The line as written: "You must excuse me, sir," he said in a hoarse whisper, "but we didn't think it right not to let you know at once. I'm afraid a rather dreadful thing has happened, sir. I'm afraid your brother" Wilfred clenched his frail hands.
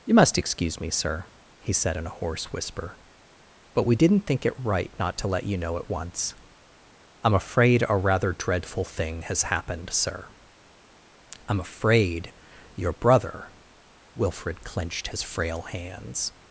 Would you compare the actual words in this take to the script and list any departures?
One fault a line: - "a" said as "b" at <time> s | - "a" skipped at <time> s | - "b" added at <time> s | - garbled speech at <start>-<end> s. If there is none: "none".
none